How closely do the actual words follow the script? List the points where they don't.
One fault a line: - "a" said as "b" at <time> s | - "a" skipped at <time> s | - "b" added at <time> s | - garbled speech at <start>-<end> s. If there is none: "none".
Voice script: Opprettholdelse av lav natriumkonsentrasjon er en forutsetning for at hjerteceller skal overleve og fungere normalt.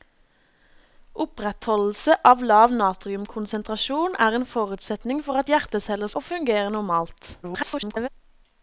- "skal overleve" skipped at 6.1 s
- garbled speech at 7.4-8.1 s